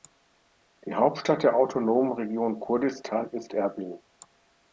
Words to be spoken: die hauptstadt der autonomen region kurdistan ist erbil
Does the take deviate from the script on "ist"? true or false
false